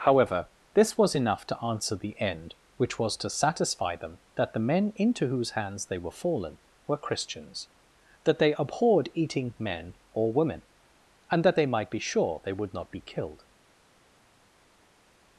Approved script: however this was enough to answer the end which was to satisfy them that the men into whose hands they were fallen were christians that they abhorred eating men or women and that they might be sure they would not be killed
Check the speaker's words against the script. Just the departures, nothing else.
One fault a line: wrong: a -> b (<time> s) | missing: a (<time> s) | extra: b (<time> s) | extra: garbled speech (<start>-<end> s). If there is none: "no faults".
no faults